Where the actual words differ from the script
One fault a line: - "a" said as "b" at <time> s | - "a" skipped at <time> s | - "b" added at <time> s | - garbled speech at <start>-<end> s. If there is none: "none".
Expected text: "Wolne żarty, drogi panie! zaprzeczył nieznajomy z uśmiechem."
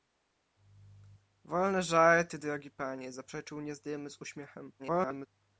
- garbled speech at 4.8-5.3 s